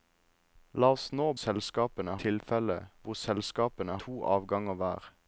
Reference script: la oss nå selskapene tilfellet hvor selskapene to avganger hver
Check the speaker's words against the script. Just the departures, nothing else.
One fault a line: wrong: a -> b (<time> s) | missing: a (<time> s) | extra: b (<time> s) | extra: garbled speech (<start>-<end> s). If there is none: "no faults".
no faults